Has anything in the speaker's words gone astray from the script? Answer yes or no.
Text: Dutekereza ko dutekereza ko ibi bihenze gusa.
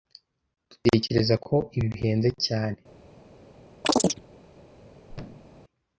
yes